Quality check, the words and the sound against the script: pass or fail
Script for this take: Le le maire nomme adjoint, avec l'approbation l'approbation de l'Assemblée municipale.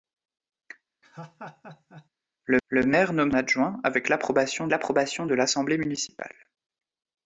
fail